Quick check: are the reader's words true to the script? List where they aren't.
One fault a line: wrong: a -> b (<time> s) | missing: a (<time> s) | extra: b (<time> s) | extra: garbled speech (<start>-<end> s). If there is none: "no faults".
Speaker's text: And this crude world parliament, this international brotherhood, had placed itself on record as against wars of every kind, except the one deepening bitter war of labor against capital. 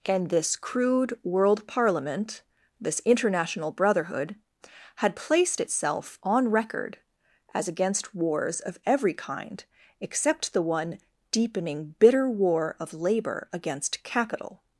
no faults